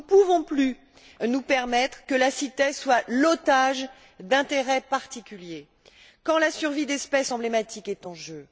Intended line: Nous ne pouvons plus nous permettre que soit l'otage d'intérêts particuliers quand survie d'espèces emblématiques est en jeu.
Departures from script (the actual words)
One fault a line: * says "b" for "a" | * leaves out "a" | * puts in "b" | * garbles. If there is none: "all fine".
* puts in "la CITES"
* puts in "la"